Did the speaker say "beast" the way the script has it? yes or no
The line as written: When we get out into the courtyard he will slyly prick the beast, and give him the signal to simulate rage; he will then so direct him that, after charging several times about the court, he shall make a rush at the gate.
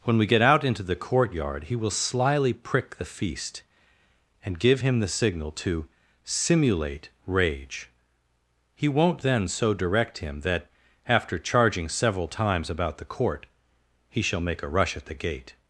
no